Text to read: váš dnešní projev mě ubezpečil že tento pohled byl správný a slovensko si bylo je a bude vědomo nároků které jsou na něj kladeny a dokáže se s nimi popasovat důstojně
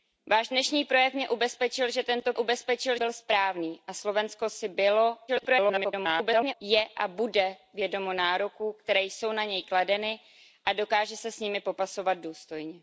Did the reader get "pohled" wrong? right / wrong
wrong